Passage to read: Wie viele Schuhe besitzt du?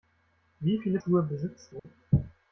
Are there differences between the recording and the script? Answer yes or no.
no